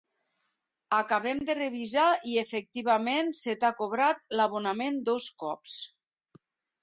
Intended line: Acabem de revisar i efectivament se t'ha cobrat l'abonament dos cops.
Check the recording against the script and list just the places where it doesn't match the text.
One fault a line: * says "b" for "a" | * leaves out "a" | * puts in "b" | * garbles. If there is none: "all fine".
all fine